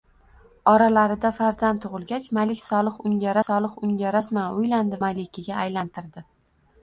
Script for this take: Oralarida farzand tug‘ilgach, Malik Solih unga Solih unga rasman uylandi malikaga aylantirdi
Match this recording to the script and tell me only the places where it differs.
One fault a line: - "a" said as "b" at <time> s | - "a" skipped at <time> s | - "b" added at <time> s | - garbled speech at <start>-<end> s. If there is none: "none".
none